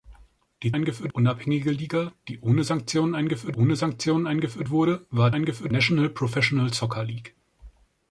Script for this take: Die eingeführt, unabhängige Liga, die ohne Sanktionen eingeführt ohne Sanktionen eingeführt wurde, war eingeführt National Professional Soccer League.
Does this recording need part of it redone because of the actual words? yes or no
no